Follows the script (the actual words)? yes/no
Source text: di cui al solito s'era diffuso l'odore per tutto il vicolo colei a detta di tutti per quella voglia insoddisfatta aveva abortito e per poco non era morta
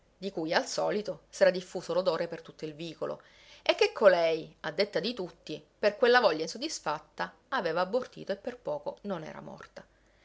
no